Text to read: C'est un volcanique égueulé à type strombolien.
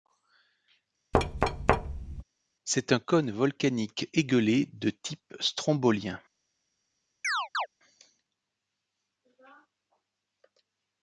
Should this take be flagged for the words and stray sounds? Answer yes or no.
yes